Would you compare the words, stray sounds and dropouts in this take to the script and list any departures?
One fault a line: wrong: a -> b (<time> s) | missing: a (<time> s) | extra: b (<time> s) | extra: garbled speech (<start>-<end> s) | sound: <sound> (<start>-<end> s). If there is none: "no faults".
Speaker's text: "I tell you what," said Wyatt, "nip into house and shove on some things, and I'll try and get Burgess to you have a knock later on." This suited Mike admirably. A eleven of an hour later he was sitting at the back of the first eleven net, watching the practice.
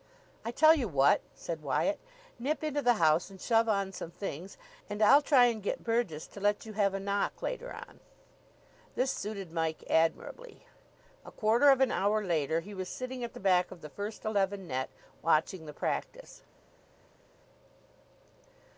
extra: the (2.8 s)
extra: let (6.4 s)
wrong: eleven -> quarter (11.3 s)